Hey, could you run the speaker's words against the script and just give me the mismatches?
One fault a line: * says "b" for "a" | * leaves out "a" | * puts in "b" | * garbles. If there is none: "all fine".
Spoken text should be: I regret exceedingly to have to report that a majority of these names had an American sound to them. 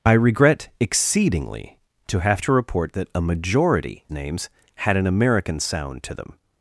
* leaves out "of these"